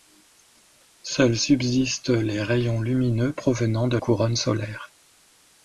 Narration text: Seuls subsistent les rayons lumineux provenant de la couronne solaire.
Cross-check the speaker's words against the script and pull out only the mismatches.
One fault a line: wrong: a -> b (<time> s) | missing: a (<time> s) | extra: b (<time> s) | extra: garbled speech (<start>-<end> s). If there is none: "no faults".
missing: la (4.0 s)